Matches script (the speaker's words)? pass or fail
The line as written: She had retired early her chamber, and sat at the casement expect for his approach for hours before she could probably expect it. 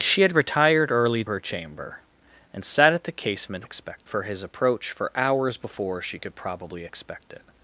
pass